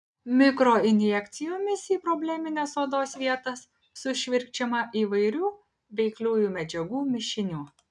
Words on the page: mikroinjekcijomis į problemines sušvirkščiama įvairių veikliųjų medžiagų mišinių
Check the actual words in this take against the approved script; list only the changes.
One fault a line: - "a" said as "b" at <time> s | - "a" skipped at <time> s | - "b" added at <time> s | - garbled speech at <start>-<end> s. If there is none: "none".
- "odos vietas" added at 2.8 s